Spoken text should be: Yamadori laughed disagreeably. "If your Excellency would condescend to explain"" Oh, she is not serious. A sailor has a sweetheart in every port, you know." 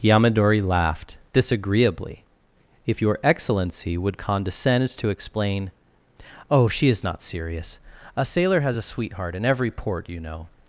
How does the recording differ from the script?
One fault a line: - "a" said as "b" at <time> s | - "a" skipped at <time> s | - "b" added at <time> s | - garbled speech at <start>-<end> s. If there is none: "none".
none